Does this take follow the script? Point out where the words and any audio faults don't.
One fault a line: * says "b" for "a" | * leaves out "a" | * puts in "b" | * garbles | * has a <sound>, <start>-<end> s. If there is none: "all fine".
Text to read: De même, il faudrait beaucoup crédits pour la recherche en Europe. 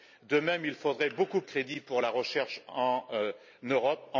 all fine